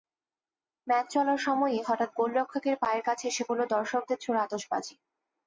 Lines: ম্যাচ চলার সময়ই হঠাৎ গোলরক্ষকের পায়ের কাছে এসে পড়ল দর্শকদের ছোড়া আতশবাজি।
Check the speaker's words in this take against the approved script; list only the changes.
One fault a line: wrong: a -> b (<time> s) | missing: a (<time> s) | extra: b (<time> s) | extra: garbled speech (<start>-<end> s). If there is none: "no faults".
no faults